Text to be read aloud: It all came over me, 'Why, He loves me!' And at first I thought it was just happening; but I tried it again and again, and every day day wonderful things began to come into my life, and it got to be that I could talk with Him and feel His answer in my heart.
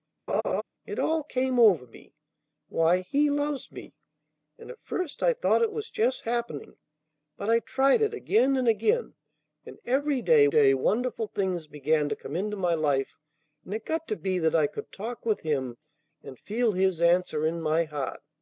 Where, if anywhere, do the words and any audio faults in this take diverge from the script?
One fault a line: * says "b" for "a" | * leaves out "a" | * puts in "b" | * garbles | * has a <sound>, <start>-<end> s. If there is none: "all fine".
* has a laugh, 0.3-0.6 s